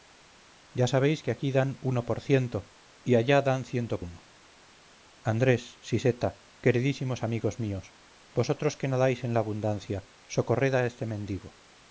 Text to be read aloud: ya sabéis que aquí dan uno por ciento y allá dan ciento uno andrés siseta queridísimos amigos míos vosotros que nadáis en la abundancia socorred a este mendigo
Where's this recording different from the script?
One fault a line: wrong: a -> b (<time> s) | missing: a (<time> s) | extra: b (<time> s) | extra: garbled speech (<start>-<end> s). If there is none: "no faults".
no faults